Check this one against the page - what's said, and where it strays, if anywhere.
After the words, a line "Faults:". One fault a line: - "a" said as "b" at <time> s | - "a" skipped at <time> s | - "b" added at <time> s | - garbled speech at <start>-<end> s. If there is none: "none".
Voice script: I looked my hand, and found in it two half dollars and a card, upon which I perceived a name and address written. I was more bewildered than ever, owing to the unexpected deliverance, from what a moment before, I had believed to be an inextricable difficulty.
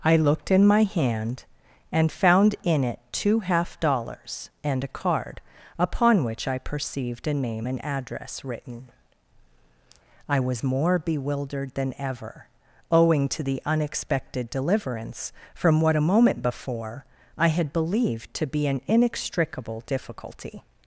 I looked in my hand, and found in it two half dollars and a card, upon which I perceived a name and address written. I was more bewildered than ever, owing to the unexpected deliverance, from what a moment before, I had believed to be an inextricable difficulty.
Faults:
- "in" added at 0.5 s